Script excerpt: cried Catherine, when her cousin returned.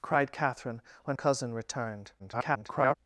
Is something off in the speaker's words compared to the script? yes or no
yes